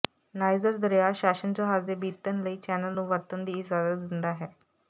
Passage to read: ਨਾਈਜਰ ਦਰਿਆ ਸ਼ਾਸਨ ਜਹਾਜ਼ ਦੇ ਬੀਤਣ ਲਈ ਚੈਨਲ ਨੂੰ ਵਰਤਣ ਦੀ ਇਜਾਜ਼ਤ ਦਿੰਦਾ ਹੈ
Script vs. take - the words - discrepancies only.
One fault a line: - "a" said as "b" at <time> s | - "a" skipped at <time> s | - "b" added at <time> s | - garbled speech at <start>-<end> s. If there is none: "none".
none